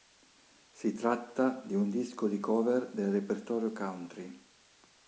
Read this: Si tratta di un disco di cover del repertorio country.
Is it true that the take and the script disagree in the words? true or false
false